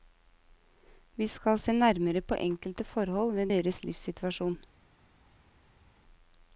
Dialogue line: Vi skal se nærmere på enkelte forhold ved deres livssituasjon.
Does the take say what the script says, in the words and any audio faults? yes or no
yes